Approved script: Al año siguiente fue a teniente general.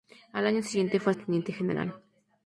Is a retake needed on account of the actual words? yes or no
no